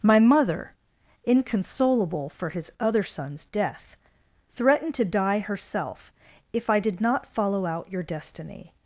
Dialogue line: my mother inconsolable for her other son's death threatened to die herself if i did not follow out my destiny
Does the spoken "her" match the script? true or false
false